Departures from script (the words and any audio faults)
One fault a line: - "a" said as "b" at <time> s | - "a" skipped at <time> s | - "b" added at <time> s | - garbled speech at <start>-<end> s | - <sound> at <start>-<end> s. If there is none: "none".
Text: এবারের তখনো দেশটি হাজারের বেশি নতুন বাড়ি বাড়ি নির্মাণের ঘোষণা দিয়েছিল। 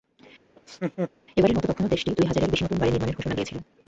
- laugh at 0.6-1.1 s
- "মতো" added at 1.6 s
- "দুই" added at 2.1 s
- "বাড়ি" skipped at 2.9 s